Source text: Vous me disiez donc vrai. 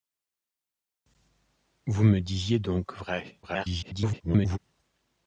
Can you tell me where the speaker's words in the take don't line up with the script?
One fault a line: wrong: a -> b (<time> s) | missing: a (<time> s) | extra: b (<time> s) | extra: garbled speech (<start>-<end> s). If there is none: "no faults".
extra: garbled speech (3.4-4.6 s)